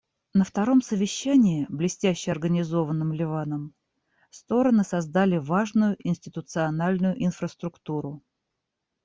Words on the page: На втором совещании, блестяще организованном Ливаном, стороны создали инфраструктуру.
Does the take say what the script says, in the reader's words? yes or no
no